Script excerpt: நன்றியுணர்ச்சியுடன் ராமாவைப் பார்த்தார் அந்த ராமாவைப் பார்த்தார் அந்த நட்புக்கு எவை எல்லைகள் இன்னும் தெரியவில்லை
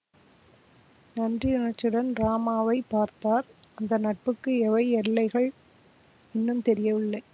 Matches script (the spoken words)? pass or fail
fail